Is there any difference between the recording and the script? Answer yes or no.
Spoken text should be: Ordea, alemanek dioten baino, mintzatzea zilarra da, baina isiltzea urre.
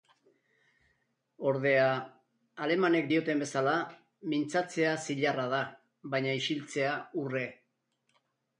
yes